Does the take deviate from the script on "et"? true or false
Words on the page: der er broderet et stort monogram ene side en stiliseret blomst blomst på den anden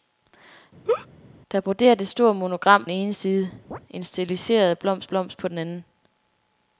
false